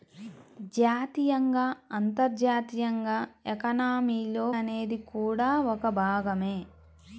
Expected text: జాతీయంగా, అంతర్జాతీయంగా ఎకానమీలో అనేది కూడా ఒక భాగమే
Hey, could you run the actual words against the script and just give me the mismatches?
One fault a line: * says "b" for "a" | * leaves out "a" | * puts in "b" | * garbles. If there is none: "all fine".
all fine